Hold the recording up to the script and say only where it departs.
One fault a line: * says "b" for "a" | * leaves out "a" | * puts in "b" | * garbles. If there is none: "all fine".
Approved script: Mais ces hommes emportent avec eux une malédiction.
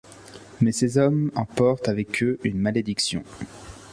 all fine